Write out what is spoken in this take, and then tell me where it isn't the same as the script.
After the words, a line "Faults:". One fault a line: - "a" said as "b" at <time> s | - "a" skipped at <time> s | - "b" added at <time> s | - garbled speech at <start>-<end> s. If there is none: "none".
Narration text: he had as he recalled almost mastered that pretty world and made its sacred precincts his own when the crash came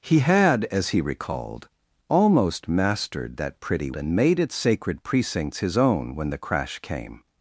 he had as he recalled almost mastered that pretty and made its sacred precincts his own when the crash came
Faults:
- "world" skipped at 3.9 s